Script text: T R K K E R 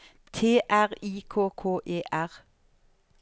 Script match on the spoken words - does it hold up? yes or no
no